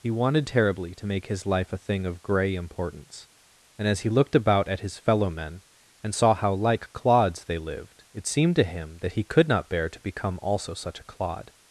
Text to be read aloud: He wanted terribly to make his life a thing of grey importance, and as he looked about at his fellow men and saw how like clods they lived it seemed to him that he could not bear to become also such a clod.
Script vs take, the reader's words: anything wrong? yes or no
no